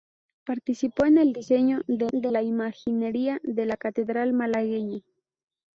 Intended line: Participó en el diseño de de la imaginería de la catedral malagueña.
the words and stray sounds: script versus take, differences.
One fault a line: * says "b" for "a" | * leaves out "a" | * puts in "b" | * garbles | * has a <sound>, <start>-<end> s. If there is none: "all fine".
all fine